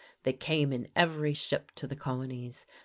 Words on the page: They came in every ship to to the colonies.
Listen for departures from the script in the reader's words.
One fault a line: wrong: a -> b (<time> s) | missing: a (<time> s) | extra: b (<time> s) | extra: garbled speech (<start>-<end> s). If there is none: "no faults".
missing: to (1.9 s)